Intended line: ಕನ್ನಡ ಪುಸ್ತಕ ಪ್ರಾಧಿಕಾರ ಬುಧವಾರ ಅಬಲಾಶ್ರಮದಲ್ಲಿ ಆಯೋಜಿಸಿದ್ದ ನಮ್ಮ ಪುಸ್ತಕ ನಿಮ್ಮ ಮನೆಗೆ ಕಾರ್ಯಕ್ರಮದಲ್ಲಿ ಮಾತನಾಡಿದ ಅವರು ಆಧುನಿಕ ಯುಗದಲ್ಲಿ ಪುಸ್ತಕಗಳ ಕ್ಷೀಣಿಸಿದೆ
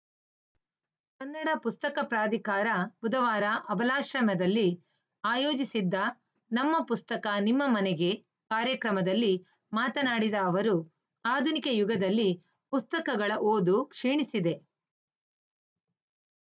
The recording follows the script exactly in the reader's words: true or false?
false